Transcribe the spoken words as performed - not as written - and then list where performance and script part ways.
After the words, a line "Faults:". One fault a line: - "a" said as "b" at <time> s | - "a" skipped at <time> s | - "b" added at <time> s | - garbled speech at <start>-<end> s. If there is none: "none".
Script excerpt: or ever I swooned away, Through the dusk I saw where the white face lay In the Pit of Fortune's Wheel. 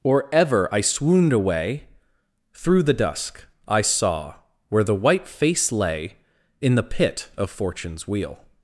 or ever I swooned away, Through the dusk I saw where the white face lay In the Pit of Fortune's Wheel.
Faults:
none